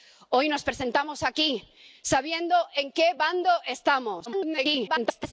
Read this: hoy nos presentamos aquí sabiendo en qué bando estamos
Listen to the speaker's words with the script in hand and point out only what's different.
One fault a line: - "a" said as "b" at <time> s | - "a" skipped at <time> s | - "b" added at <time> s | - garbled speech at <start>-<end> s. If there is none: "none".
- garbled speech at 4.3-5.3 s